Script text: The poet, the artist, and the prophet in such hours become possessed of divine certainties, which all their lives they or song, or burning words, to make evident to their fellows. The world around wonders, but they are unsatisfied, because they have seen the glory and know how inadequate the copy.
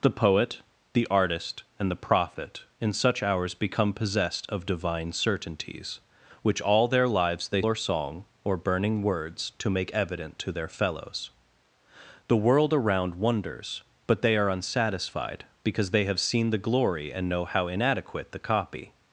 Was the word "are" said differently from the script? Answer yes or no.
no